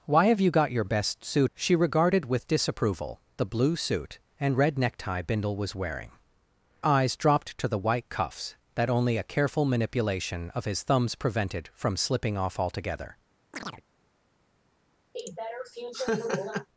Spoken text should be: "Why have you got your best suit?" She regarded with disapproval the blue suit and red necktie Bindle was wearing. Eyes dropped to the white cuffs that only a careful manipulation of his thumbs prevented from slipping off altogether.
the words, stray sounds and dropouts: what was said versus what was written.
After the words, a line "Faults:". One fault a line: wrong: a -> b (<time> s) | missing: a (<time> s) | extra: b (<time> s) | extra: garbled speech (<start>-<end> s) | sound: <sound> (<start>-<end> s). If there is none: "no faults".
"Why have you got your best suit?" She regarded with disapproval the blue suit and red necktie Bindle was wearing. Eyes dropped to the white cuffs that only a careful manipulation of his thumbs prevented from slipping off altogether.
Faults:
sound: chirp (13.5-13.8 s)
sound: laugh (15.1-16.7 s)